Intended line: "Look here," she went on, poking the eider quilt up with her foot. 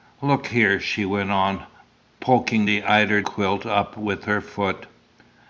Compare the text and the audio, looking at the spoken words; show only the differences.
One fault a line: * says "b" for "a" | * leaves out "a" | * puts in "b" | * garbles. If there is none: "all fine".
all fine